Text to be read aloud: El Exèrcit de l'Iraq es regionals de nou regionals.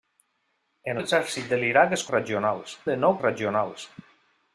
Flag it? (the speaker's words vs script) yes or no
no